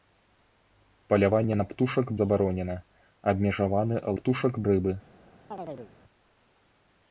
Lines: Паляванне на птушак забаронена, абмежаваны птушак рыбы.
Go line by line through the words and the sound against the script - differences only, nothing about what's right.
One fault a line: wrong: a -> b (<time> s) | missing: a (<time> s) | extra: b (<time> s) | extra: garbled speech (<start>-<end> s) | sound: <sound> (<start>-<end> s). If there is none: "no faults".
sound: chirp (5.5-5.9 s)